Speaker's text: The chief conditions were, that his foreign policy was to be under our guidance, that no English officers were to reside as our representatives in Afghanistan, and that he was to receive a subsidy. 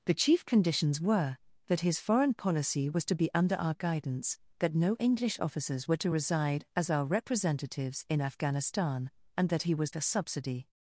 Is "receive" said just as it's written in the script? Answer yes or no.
no